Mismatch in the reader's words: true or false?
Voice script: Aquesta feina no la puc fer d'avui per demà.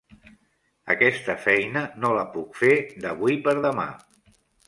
false